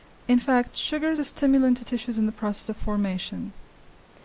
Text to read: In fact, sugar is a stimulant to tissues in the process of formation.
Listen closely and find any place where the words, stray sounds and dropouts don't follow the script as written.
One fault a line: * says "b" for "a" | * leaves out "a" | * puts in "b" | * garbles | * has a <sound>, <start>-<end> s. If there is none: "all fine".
all fine